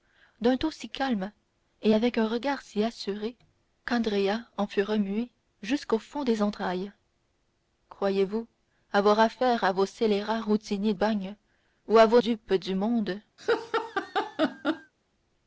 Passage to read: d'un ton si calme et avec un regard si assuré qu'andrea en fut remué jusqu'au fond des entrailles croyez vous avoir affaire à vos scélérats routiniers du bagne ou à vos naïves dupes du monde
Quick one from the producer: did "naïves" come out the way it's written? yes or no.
no